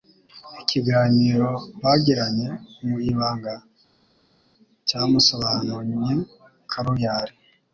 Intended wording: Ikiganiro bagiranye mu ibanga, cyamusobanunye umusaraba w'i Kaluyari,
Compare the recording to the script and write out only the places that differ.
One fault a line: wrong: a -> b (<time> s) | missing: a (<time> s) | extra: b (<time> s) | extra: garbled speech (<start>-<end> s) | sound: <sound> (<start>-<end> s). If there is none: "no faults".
missing: umusaraba w'i (6.1 s)